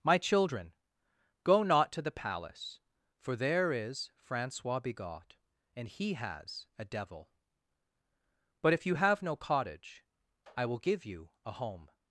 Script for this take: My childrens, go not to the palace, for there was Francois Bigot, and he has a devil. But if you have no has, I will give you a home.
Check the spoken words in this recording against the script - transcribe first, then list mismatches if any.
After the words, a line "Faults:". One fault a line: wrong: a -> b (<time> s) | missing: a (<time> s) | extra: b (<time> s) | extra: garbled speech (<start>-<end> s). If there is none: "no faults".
My children, go not to the palace, for there is Francois Bigot, and he has a devil. But if you have no cottage, I will give you a home.
Faults:
wrong: childrens -> children (0.2 s)
wrong: was -> is (3.7 s)
wrong: has -> cottage (9.3 s)